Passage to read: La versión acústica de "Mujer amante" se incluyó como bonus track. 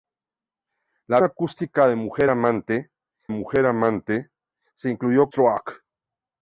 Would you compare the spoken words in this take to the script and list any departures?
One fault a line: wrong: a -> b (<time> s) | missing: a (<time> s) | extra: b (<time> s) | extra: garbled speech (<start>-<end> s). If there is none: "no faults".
missing: versión (1.2 s)
extra: mujer amante (3.3 s)
missing: como bonus (5.3 s)